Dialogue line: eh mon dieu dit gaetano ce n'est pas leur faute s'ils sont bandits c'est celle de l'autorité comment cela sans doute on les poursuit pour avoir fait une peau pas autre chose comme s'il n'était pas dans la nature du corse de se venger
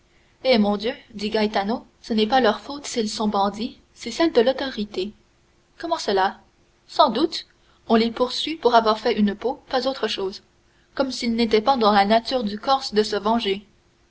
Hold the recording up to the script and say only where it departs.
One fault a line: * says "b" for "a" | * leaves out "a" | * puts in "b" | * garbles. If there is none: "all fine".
all fine